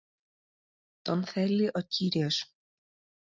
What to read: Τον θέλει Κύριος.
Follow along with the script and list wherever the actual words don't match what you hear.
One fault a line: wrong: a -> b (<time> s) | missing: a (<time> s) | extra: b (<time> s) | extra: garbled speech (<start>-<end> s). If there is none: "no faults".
extra: ο (1.7 s)